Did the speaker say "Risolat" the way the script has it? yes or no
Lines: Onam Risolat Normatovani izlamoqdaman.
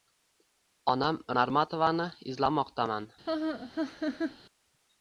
no